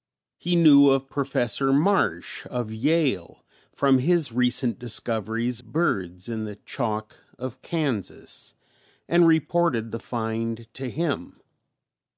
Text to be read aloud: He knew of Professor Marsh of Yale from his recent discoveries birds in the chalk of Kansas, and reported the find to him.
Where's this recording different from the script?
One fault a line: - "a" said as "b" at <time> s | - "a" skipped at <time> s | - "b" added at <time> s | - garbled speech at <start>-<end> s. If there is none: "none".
none